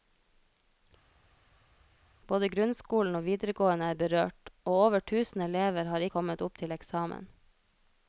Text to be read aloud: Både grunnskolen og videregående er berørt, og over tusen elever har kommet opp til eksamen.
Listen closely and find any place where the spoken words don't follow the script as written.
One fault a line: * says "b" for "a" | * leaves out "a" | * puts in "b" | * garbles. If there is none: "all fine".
all fine